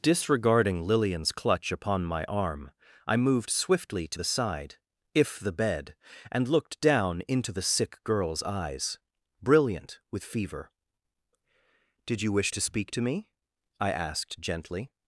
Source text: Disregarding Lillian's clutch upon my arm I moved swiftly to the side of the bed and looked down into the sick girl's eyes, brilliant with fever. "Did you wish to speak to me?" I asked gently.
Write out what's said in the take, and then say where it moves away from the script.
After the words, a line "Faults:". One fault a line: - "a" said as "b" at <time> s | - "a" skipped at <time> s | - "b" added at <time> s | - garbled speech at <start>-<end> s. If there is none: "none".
Disregarding Lillian's clutch upon my arm I moved swiftly to the side if the bed and looked down into the sick girl's eyes, brilliant with fever. "Did you wish to speak to me?" I asked gently.
Faults:
- "of" said as "if" at 5.1 s